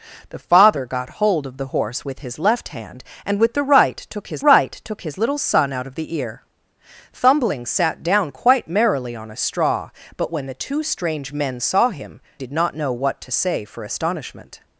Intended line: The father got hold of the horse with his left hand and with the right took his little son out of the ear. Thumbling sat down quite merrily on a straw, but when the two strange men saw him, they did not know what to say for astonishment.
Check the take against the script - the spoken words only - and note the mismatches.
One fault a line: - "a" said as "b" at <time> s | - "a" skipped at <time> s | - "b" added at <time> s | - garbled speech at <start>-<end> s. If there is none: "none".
- "right took his" added at 4.4 s
- "they" skipped at 12.2 s